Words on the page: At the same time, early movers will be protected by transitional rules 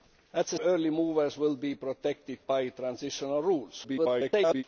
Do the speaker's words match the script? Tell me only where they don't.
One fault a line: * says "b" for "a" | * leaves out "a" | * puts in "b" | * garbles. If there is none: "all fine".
* leaves out "same time"
* garbles